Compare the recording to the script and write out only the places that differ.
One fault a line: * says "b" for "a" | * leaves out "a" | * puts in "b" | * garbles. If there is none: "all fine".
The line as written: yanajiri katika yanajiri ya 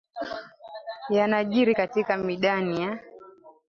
* says "midani" for "yanajiri"